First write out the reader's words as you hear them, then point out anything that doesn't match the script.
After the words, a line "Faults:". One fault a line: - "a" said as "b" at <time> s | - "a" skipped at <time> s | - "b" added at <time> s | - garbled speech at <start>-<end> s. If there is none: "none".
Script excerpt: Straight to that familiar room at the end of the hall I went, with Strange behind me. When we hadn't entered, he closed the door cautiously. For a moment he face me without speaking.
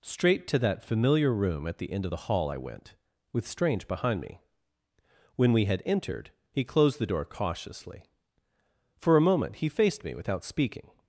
Straight to that familiar room at the end of the hall I went, with Strange behind me. When we had entered, he closed the door cautiously. For a moment he faced me without speaking.
Faults:
- "hadn't" said as "had" at 5.6 s
- "face" said as "faced" at 9.7 s